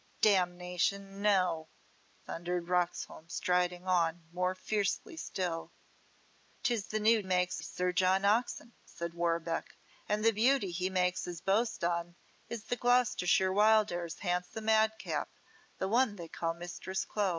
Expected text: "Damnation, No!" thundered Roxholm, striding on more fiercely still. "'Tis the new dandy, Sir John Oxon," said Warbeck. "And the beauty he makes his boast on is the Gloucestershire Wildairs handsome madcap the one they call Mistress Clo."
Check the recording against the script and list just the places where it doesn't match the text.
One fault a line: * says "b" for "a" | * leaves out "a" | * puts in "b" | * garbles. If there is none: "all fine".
* says "makes" for "dandy"